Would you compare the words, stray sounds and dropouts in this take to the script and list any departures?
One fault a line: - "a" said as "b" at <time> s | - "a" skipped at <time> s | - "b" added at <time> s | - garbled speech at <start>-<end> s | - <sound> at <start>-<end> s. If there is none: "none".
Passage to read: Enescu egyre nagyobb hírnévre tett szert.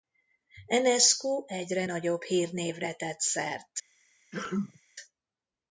- sneeze at 4.3-4.8 s